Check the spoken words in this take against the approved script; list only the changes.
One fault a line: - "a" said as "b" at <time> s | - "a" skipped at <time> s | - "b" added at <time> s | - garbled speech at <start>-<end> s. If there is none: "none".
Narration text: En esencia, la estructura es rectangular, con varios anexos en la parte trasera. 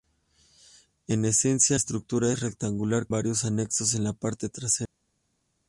- "la" skipped at 1.8 s
- "con" skipped at 3.1 s